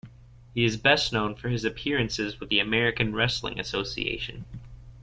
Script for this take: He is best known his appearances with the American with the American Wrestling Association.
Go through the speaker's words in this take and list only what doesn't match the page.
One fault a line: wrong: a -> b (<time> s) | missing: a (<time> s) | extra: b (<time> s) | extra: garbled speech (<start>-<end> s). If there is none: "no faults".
extra: for (1.4 s)
missing: with the American (3.1 s)